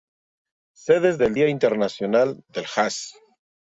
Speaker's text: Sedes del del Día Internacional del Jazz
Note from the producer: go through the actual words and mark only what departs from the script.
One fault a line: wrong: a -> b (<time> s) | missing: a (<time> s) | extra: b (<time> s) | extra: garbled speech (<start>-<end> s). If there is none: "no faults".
missing: del (1.4 s)